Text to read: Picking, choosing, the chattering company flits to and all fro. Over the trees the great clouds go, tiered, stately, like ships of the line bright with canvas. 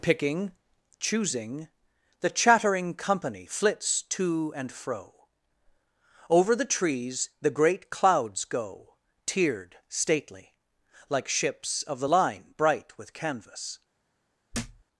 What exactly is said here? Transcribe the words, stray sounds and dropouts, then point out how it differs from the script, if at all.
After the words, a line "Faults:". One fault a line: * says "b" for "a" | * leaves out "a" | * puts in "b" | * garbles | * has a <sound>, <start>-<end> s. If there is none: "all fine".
Picking, choosing, the chattering company flits to and fro. Over the trees the great clouds go, tiered, stately, like ships of the line bright with canvas.
Faults:
* leaves out "all"
* has a thud, 14.5-14.8 s